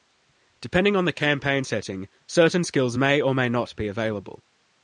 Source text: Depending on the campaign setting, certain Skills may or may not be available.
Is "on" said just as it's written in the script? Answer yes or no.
yes